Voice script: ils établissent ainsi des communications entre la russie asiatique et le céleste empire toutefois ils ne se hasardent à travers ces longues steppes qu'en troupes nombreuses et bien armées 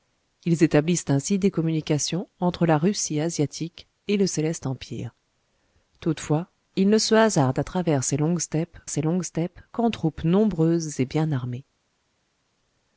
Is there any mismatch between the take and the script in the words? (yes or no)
yes